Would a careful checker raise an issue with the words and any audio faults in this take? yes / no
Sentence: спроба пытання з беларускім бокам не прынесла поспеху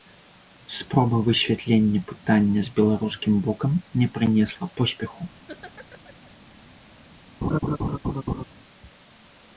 yes